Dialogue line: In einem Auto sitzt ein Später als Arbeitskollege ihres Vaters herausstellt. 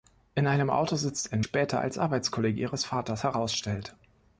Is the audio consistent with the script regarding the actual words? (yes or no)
yes